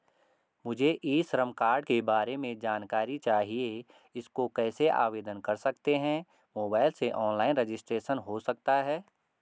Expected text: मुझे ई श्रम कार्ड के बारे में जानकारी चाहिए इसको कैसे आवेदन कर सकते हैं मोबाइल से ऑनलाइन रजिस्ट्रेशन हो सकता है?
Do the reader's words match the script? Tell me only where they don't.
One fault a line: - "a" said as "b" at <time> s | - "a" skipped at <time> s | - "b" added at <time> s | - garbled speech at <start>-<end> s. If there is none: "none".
none